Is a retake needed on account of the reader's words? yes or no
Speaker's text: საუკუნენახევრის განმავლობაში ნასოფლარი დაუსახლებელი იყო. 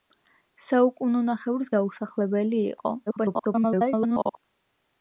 yes